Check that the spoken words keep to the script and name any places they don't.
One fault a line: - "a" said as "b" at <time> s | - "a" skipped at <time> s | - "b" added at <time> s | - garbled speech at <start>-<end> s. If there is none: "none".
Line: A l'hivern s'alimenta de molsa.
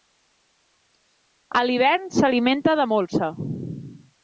none